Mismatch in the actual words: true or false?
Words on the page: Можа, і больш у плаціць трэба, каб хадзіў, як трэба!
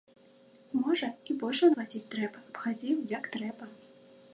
false